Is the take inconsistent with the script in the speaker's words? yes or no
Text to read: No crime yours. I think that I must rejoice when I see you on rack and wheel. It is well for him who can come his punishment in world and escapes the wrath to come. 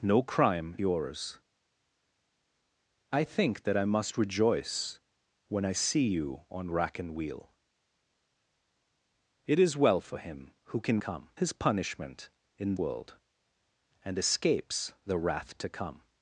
no